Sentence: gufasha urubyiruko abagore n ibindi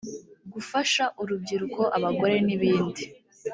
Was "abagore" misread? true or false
false